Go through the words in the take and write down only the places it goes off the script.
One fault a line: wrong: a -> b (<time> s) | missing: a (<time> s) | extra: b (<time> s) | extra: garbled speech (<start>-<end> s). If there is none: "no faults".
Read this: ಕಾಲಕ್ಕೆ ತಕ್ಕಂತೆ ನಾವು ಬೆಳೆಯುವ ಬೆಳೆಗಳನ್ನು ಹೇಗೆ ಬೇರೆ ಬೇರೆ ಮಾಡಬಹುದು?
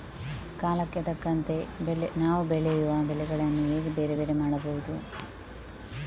no faults